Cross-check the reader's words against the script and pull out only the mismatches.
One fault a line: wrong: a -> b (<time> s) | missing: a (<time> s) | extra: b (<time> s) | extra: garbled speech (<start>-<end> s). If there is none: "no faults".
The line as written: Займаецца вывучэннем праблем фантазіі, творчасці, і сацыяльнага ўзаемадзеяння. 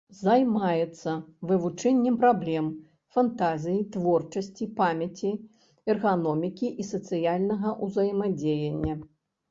extra: памяці эрганомікі (4.8 s)